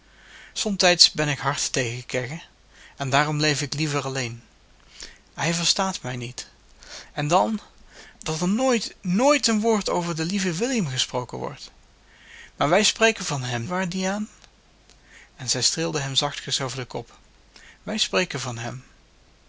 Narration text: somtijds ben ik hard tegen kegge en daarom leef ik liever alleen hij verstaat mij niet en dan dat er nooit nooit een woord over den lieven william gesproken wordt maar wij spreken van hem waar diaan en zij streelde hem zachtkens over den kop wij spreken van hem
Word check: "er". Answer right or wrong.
right